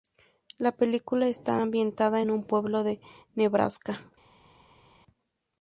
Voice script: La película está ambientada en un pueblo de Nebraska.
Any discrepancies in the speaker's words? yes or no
no